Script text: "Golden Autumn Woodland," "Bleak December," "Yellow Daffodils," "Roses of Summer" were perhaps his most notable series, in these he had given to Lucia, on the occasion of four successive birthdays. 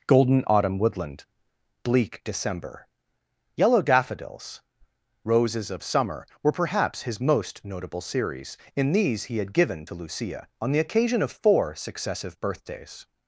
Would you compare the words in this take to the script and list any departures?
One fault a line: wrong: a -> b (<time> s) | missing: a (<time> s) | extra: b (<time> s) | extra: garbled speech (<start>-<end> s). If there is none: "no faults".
no faults